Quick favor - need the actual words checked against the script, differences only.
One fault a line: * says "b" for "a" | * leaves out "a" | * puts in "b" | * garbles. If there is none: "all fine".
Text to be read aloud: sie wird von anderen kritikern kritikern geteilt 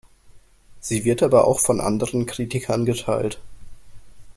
* puts in "aber auch"
* leaves out "kritikern"